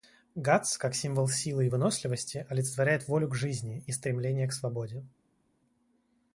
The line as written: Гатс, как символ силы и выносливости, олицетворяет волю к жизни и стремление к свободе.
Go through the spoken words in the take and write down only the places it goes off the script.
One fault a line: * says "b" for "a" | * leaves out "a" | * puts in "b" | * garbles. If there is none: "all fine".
all fine